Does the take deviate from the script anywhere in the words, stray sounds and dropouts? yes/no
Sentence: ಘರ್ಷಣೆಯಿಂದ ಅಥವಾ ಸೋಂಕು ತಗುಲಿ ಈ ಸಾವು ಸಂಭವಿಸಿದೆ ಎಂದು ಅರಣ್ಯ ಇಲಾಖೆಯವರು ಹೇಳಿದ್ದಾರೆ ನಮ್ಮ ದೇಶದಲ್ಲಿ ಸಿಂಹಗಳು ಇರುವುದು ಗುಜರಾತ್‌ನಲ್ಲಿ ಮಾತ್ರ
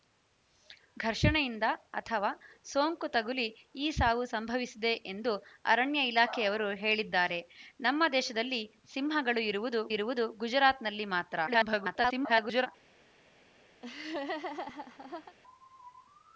yes